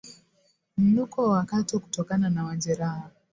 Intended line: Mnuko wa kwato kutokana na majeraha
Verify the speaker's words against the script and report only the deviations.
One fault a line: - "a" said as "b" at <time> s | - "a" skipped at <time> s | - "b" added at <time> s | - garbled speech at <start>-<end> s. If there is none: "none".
none